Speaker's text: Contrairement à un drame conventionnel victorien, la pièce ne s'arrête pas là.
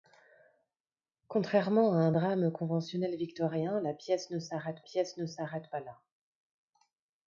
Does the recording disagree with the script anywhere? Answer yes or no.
yes